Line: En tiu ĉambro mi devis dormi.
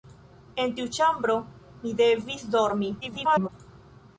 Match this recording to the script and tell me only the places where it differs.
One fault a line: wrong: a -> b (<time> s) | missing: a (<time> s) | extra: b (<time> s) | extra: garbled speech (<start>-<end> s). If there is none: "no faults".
extra: garbled speech (3.0-3.5 s)